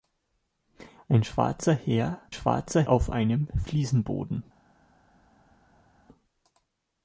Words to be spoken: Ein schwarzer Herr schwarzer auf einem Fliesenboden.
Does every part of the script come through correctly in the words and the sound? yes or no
yes